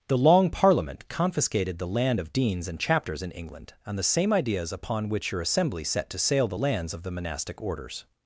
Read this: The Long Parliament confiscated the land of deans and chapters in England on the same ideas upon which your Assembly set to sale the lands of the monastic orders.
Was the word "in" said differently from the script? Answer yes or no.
no